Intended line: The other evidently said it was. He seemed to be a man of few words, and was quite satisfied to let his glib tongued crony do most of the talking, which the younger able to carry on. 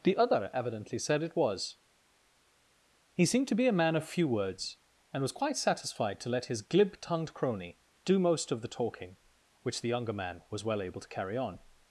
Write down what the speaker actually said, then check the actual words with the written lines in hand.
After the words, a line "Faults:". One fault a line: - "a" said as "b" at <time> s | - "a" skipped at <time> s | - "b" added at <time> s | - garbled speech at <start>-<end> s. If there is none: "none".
The other evidently said it was. He seemed to be a man of few words, and was quite satisfied to let his glib tongued crony do most of the talking, which the younger man was well able to carry on.
Faults:
- "man was well" added at 10.1 s